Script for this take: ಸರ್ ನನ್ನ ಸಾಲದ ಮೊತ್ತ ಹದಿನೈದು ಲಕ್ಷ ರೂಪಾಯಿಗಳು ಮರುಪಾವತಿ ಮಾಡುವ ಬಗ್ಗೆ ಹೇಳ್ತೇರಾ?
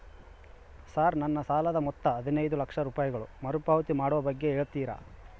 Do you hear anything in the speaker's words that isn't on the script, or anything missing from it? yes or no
no